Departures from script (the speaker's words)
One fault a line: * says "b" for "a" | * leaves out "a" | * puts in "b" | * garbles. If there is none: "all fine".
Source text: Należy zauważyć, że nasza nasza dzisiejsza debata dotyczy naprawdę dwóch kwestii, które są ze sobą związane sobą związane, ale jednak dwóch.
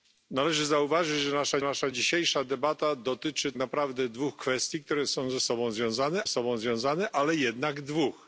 all fine